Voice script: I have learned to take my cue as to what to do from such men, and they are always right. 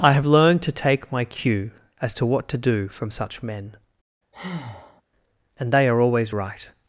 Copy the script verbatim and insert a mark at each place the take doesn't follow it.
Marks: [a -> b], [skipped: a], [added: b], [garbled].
I have learned to take my cue as to what to do from such men, and they are always right.